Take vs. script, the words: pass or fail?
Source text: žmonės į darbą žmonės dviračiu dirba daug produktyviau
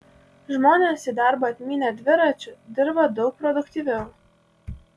fail